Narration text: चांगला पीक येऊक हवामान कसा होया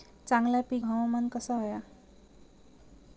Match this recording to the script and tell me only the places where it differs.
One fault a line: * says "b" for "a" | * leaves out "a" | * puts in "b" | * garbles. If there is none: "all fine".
* leaves out "येऊक"